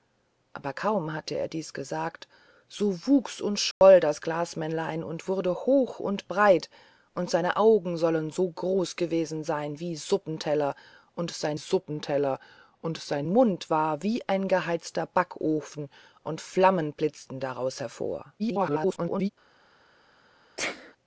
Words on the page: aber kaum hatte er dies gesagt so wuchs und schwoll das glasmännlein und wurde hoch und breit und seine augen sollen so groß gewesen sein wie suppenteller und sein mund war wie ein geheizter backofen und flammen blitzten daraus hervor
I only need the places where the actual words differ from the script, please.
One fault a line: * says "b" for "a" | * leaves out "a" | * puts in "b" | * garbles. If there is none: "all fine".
* puts in "suppenteller und sein"
* garbles